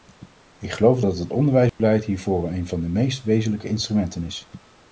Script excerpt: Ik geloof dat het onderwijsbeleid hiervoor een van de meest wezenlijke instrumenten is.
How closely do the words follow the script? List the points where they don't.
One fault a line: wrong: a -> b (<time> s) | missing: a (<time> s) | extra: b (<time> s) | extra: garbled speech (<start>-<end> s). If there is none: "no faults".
no faults